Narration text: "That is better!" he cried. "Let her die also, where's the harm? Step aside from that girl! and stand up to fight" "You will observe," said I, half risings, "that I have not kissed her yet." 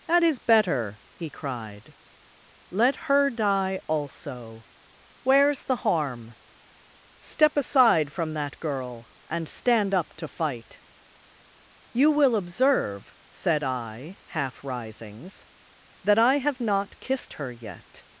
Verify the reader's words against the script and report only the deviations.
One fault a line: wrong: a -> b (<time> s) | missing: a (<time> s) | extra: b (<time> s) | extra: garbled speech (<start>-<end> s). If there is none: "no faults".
no faults